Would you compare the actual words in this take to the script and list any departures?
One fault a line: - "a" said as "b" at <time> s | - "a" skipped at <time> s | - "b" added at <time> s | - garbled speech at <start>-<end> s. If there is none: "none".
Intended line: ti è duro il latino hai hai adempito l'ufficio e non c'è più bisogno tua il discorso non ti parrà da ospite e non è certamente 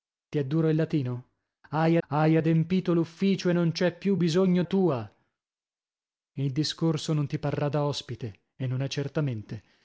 none